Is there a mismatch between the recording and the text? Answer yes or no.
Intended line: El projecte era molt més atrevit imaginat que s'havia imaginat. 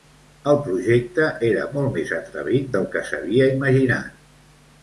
yes